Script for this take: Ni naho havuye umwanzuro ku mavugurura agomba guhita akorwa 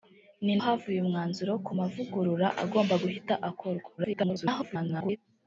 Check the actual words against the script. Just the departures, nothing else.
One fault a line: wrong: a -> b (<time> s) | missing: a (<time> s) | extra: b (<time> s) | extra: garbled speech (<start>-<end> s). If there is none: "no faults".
missing: naho (0.5 s)
extra: garbled speech (4.0-5.2 s)